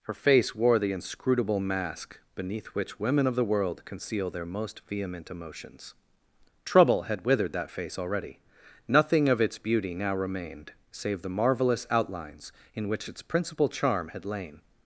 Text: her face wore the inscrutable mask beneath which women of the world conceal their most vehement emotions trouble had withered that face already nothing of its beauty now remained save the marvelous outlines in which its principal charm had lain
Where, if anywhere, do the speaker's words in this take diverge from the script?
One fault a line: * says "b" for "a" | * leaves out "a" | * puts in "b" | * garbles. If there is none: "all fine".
all fine